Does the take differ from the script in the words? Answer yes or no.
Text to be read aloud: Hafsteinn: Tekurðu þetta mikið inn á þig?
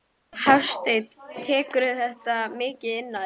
no